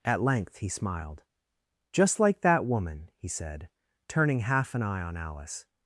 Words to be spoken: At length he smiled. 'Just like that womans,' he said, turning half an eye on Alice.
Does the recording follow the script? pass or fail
fail